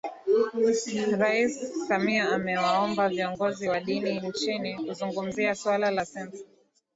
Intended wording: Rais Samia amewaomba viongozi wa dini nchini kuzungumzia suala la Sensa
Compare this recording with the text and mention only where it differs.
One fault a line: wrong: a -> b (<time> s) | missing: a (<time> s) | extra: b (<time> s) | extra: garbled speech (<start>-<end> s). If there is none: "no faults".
no faults